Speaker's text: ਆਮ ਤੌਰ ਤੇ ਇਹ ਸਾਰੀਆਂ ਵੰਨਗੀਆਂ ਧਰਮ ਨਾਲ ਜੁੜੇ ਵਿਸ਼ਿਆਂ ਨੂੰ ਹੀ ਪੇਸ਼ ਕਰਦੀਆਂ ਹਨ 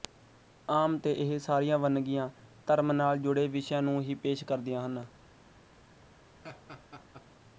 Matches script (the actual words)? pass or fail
fail